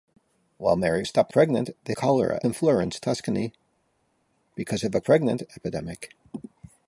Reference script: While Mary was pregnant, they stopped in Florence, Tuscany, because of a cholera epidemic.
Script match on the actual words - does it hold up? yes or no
no